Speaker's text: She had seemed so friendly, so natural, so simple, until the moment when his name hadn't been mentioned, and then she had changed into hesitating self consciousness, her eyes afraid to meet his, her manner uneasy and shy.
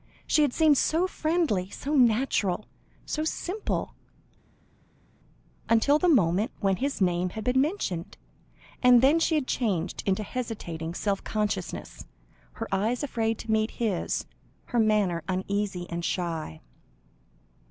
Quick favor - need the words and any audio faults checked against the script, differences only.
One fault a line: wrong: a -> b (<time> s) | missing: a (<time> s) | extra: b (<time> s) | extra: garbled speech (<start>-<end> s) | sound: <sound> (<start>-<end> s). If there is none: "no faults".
wrong: hadn't -> had (7.3 s)